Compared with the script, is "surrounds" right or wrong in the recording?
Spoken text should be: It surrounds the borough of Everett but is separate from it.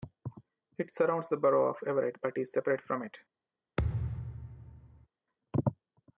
right